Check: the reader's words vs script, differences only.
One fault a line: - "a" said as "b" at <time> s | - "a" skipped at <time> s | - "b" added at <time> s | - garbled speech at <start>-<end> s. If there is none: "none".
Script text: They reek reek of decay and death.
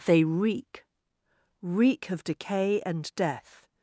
none